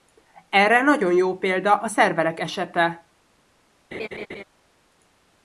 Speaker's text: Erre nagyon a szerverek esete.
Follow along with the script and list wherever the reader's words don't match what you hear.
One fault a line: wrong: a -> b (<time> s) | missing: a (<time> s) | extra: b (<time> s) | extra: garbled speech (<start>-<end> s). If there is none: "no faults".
extra: jó példa (1.1 s)